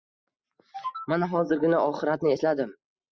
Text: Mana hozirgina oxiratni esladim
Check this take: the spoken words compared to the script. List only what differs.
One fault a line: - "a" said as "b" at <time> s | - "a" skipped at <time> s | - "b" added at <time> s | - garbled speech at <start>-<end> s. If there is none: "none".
none